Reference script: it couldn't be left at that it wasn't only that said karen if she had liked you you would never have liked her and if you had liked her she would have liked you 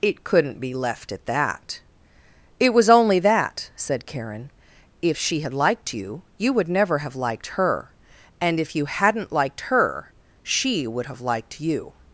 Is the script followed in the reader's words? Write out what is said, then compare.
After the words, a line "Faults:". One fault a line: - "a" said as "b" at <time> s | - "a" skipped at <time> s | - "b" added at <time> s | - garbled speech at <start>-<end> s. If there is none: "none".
it couldn't be left at that it was only that said karen if she had liked you you would never have liked her and if you hadn't liked her she would have liked you
Faults:
- "wasn't" said as "was" at 2.7 s
- "had" said as "hadn't" at 8.9 s